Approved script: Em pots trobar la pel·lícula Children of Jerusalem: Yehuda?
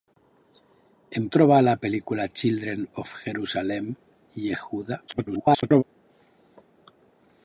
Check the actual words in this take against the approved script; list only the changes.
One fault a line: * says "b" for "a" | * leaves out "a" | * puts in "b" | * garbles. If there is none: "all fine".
* leaves out "pots"
* garbles